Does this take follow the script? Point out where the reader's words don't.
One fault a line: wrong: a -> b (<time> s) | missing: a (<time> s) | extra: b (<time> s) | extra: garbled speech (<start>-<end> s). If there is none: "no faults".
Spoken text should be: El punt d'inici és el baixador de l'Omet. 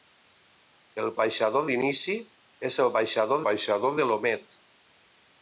wrong: punt -> baixador (1.2 s)
extra: baixador (3.5 s)